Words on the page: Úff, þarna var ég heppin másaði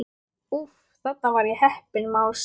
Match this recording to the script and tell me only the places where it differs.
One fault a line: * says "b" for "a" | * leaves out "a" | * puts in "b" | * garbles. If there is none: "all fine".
all fine